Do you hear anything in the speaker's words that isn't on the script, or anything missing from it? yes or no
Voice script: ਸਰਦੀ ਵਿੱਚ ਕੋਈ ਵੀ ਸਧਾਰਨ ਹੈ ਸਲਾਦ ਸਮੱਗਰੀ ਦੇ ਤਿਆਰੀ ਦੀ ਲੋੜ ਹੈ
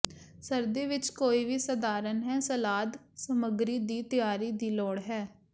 yes